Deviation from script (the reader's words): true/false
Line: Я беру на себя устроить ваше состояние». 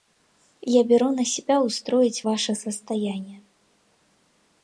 false